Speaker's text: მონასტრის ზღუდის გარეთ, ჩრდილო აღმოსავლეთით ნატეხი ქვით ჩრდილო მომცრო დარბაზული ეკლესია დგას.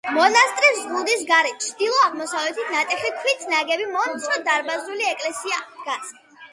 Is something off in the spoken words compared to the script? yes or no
yes